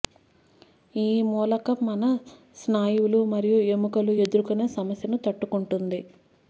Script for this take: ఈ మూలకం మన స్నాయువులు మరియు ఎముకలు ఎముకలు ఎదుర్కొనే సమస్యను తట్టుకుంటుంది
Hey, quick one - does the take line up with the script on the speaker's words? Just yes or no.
no